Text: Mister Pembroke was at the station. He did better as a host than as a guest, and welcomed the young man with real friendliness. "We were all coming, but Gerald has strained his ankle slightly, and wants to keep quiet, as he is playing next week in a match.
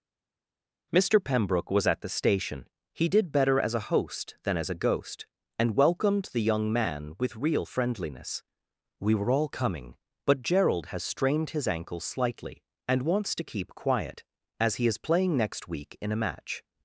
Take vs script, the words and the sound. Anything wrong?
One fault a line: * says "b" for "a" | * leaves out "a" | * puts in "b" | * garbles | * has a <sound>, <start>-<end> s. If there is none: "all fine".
* says "ghost" for "guest"